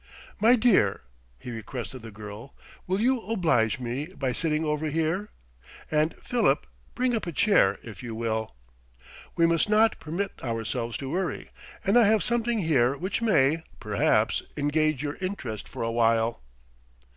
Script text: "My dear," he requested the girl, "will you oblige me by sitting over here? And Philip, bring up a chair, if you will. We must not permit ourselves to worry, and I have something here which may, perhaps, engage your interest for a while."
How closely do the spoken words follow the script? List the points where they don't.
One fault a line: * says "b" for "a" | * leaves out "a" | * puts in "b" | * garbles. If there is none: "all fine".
all fine